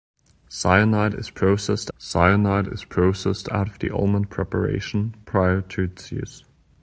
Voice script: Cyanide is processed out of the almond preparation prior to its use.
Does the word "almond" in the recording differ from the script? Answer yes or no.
no